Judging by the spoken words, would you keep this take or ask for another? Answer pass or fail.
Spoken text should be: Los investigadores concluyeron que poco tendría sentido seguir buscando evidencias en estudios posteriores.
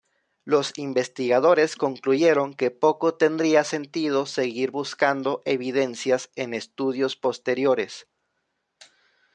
pass